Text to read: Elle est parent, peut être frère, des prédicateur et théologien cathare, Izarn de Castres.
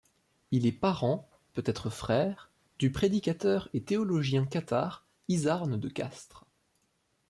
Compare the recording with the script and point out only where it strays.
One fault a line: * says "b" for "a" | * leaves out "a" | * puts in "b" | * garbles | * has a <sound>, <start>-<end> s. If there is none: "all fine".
* says "Il" for "Elle"
* says "du" for "des"